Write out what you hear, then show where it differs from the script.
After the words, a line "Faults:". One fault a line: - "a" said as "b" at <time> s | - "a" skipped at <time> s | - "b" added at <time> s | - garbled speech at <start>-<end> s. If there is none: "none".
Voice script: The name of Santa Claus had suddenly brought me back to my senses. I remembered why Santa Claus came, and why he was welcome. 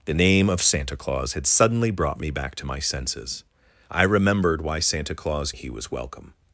The name of Santa Claus had suddenly brought me back to my senses. I remembered why Santa Claus he was welcome.
Faults:
- "came and why" skipped at 5.5 s